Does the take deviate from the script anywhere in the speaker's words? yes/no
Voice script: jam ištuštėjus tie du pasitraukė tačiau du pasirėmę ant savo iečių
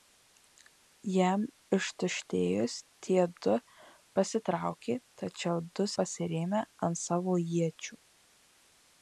no